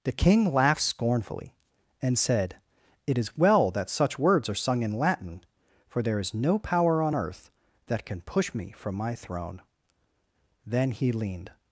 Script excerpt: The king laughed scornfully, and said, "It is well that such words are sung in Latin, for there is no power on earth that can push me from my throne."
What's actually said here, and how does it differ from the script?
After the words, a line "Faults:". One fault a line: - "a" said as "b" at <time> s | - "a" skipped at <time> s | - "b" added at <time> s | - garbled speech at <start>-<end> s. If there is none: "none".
The king laughed scornfully, and said, "It is well that such words are sung in Latin, for there is no power on earth that can push me from my throne." Then he leaned
Faults:
- "Then he leaned" added at 10.6 s